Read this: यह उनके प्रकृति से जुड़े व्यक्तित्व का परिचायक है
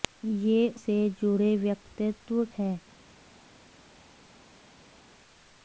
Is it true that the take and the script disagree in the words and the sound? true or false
true